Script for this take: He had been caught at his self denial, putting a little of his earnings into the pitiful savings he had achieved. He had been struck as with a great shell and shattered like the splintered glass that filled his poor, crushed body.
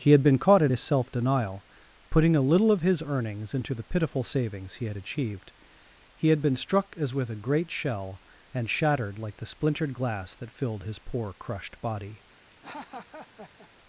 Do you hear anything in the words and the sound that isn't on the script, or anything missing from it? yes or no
yes